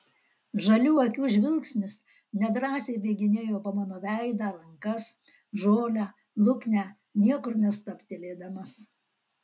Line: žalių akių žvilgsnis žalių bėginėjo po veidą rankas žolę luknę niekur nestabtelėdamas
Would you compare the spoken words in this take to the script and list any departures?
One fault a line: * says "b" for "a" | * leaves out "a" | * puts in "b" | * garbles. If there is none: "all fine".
* says "nedrąsiai" for "žalių"
* puts in "mano"